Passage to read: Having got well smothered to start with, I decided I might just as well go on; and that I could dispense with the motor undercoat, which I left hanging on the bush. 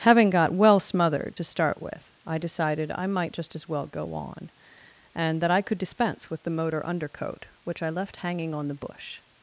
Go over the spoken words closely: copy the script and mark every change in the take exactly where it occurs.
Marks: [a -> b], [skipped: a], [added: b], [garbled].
Having got well smothered to start with, I decided I might just as well go on; and that I could dispense with the motor undercoat, which I left hanging on the bush.